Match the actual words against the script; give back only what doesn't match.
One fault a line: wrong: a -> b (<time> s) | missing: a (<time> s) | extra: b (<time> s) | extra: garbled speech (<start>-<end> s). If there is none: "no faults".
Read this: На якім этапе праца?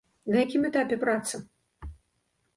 no faults